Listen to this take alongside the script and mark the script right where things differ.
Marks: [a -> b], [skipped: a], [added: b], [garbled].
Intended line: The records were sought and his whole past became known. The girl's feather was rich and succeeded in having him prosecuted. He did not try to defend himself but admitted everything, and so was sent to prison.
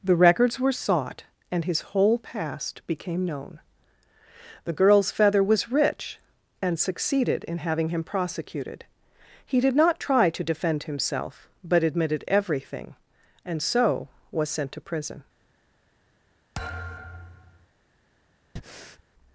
The records were sought and his whole past became known. The girl's feather was rich and succeeded in having him prosecuted. He did not try to defend himself but admitted everything, and so was sent to prison.